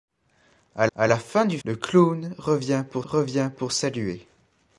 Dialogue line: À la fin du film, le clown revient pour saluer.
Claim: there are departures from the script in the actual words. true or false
true